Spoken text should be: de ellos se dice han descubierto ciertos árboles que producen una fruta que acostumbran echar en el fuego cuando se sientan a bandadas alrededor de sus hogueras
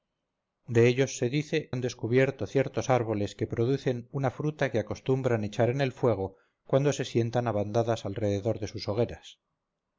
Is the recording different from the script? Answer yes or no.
no